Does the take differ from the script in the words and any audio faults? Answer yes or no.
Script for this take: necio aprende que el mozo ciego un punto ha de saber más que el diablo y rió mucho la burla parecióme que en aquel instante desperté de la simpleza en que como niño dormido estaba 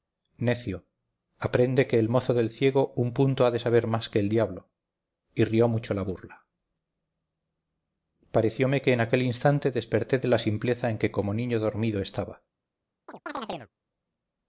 yes